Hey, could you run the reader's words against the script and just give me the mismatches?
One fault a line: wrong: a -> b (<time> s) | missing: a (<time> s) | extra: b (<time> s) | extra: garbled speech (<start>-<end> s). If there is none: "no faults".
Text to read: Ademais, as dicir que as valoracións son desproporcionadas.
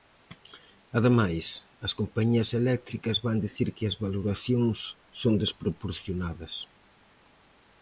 extra: compañías eléctricas van (2.0 s)